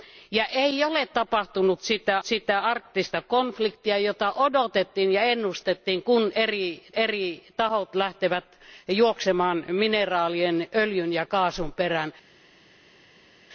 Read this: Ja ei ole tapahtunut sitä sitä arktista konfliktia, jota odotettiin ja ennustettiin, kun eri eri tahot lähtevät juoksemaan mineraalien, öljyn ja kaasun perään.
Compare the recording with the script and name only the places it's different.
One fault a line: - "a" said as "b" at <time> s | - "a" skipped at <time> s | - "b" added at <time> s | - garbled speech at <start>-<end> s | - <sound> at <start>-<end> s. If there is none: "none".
none